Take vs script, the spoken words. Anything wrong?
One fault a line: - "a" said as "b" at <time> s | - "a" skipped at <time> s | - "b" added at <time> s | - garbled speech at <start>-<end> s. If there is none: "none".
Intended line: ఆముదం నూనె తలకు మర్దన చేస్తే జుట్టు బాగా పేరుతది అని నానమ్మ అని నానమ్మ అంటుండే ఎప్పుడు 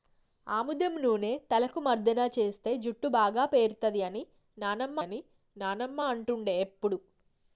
none